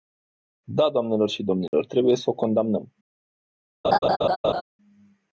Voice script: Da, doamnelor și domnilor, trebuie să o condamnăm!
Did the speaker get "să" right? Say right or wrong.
right